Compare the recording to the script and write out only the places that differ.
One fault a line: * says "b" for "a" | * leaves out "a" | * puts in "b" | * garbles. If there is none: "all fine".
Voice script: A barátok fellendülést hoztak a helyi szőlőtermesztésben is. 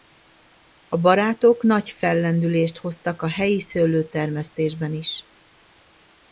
* puts in "nagy"